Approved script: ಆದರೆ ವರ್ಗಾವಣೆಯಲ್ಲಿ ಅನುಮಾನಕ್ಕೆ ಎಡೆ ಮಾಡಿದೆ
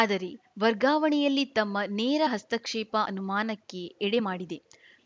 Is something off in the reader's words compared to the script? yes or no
yes